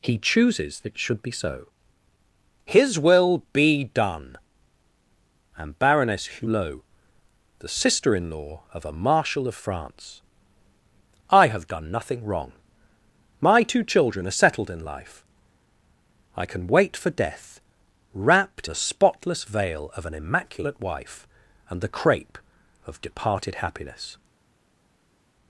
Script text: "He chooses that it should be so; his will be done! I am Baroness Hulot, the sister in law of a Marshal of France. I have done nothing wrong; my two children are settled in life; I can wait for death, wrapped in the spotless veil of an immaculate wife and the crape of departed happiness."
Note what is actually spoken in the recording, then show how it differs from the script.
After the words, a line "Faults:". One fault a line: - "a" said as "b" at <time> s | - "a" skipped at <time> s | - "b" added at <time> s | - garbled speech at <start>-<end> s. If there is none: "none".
"He chooses it should be so; his will be done! am Baroness Hulot, the sister in law of a Marshal of France. I have done nothing wrong; my two children are settled in life; I can wait for death, wrapped the spotless veil of an immaculate wife and the crape of departed happiness."
Faults:
- "that" skipped at 0.8 s
- "I" skipped at 4.4 s
- "in" skipped at 18.7 s